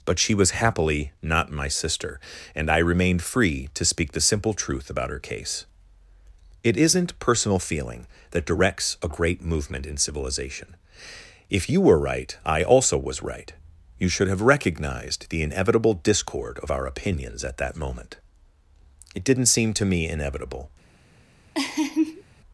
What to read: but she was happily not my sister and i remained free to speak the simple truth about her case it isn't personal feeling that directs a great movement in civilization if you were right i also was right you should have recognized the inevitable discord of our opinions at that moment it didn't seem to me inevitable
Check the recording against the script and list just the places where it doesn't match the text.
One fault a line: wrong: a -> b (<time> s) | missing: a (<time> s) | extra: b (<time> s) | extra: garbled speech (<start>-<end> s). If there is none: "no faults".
no faults